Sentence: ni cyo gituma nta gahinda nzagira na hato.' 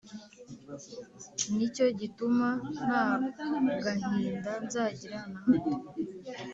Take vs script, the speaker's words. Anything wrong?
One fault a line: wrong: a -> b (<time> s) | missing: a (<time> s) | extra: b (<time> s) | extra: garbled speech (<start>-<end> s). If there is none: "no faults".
no faults